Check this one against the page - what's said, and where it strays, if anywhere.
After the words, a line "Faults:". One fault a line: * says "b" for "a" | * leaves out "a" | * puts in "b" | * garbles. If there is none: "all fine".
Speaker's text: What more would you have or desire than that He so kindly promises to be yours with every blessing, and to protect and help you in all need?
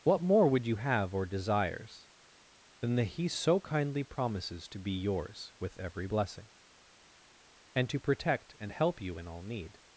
What more would you have or desires than that He so kindly promises to be yours with every blessing, and to protect and help you in all need?
Faults:
* says "desires" for "desire"